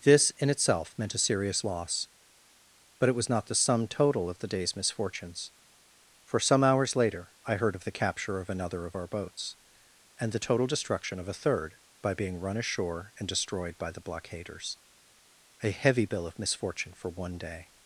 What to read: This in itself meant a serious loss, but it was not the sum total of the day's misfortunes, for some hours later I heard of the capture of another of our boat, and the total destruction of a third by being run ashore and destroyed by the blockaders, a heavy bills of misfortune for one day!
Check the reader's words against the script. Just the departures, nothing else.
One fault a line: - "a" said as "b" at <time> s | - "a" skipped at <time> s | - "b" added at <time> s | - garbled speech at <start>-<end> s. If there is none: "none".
- "boat" said as "boats" at 9.1 s
- "bills" said as "bill" at 16.0 s